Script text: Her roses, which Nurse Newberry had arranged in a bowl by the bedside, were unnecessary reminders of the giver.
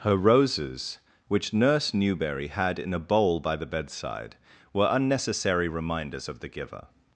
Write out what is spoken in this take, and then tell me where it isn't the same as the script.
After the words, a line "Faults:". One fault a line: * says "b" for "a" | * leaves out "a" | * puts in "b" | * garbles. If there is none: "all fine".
Her roses, which Nurse Newberry had in a bowl by the bedside, were unnecessary reminders of the giver.
Faults:
* leaves out "arranged"